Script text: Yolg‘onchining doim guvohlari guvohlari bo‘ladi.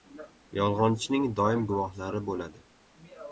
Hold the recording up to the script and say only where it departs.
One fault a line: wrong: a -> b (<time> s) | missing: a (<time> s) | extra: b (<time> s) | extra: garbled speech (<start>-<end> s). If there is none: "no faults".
missing: guvohlari (2.2 s)